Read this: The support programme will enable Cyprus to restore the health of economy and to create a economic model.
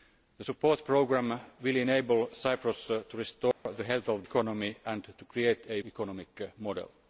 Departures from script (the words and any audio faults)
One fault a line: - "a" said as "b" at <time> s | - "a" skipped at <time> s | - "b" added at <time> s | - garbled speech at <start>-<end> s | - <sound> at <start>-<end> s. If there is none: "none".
- dropout at 3.5-3.7 s